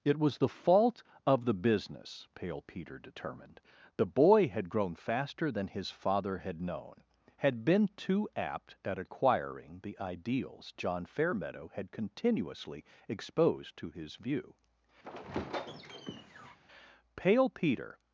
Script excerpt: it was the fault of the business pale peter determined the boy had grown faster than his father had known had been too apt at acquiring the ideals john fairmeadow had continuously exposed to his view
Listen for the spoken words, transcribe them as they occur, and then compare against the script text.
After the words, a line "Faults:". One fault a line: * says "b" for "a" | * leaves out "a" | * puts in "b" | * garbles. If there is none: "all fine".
it was the fault of the business pale peter determined the boy had grown faster than his father had known had been too apt at acquiring the ideals john fairmeadow had continuously exposed to his view pale peter
Faults:
* puts in "pale peter"